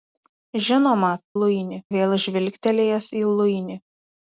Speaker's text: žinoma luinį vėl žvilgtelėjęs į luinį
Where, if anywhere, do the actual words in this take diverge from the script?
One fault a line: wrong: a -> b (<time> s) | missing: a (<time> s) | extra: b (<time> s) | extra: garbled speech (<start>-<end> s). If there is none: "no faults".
no faults